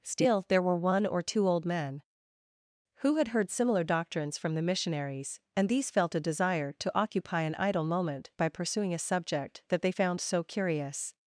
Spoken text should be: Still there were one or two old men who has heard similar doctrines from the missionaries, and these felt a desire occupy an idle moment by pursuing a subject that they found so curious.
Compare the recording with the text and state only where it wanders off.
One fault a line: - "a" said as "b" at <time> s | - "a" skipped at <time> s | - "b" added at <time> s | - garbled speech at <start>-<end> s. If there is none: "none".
- "has" said as "had" at 3.2 s
- "to" added at 6.7 s